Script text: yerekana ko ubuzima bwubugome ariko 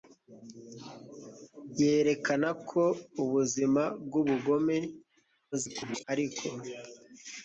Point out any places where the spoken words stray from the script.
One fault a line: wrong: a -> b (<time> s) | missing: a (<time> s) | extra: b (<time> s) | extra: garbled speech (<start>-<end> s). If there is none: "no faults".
extra: garbled speech (5.5-6.0 s)